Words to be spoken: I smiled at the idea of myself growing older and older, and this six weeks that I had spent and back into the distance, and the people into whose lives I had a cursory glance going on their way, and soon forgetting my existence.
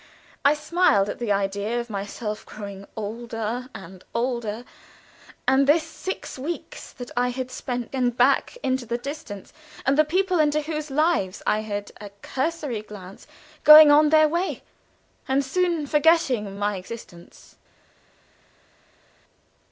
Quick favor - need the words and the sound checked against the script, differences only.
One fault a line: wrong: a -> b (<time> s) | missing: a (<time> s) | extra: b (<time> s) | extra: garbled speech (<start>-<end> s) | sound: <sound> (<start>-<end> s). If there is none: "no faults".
no faults